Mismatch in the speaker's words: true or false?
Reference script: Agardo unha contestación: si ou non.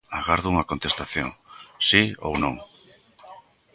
false